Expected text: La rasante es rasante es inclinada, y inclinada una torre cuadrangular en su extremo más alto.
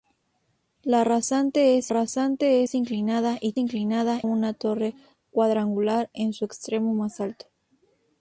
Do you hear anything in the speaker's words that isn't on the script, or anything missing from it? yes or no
no